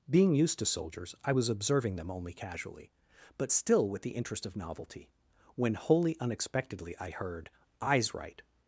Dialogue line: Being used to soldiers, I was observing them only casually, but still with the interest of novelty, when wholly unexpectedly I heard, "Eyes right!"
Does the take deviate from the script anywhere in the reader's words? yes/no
no